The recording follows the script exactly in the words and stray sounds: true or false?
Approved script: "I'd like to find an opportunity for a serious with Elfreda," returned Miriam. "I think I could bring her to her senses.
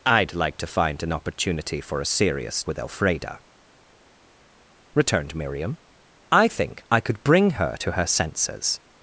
true